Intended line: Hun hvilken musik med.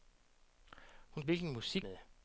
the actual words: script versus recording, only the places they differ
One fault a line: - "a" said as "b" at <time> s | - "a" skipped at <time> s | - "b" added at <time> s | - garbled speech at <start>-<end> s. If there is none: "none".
none